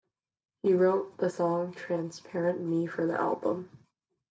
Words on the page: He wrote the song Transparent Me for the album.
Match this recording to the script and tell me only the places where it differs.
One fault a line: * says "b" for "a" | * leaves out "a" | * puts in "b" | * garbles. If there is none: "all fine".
all fine